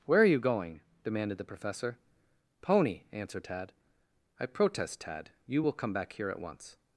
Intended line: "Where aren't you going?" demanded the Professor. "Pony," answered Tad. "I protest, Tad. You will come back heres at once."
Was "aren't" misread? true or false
true